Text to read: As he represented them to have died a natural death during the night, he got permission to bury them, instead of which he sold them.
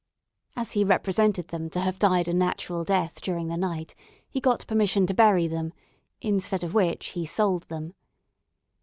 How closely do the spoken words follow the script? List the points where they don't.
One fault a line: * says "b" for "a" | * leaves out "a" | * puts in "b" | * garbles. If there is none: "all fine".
all fine